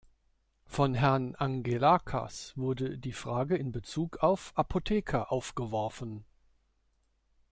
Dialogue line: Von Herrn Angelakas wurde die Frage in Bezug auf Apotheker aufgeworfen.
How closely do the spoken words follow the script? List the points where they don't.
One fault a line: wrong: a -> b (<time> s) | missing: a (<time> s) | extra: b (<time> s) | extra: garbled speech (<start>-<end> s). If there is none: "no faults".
no faults